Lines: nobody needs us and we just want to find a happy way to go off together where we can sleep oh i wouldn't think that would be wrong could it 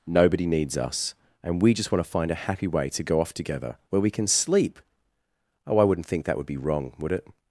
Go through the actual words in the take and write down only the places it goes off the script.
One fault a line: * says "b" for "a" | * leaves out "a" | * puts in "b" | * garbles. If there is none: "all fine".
* says "would" for "could"